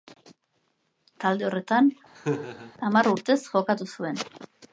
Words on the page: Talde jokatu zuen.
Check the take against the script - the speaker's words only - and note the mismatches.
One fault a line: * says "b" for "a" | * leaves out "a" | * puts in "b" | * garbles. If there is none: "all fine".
* puts in "horretan hamar urtez"